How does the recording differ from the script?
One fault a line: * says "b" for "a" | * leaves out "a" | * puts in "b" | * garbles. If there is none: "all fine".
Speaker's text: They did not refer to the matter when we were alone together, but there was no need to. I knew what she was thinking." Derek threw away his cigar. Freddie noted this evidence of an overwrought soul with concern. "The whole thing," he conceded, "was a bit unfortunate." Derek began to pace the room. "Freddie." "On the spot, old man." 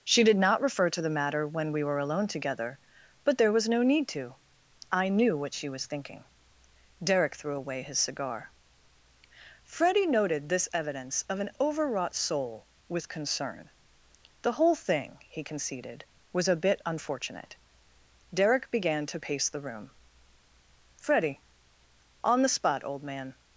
* says "She" for "They"